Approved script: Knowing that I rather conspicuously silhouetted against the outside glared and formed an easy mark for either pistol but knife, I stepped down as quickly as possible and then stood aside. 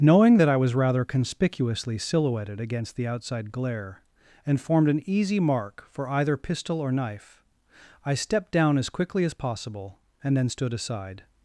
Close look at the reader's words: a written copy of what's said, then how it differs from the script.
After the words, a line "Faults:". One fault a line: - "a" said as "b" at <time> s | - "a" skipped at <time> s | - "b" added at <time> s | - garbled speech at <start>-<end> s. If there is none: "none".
Knowing that I was rather conspicuously silhouetted against the outside glare and formed an easy mark for either pistol or knife, I stepped down as quickly as possible and then stood aside.
Faults:
- "was" added at 0.6 s
- "glared" said as "glare" at 3.5 s
- "but" said as "or" at 6.8 s